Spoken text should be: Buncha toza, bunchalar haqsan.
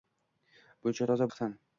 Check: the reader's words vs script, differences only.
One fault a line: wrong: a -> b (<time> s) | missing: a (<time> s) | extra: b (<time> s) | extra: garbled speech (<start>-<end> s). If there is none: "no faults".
missing: bunchalar (1.3 s)